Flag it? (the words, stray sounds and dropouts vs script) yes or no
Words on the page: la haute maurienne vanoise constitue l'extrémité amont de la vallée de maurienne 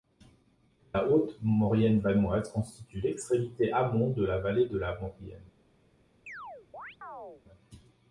yes